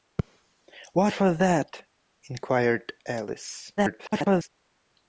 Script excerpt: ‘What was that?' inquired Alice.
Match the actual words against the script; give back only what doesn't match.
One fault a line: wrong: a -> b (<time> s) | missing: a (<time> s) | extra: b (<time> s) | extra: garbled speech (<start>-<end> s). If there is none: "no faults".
extra: garbled speech (3.8-4.5 s)